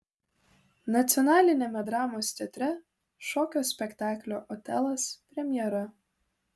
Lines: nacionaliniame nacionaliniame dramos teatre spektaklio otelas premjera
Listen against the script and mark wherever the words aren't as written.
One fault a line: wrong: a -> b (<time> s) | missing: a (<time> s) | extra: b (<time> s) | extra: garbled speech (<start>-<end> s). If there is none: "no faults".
missing: nacionaliniame (1.8 s)
extra: šokio (3.3 s)